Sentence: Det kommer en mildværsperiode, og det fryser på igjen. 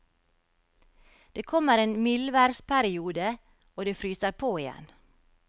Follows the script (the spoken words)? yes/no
yes